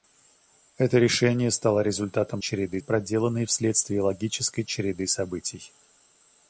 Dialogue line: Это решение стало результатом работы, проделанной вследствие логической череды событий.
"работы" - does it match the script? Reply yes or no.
no